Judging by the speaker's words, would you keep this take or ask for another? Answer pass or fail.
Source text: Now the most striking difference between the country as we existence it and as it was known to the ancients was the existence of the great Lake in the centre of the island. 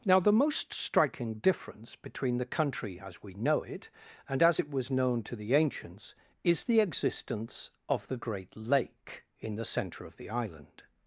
fail